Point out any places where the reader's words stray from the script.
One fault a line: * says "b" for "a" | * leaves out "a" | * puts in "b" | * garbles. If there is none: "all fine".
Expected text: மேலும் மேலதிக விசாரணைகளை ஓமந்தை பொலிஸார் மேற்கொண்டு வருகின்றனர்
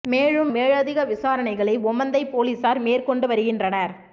all fine